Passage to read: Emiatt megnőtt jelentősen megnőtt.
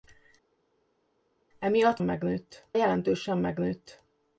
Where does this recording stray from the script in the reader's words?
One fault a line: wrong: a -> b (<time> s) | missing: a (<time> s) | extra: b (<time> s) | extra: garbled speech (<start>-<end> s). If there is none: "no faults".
no faults